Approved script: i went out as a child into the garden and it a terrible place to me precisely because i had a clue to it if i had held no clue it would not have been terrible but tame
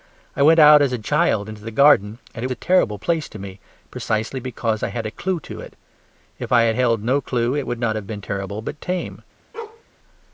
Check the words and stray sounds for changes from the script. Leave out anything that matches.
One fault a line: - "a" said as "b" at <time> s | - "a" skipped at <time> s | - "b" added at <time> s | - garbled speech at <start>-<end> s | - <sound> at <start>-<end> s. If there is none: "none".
- bark at 9.5-9.8 s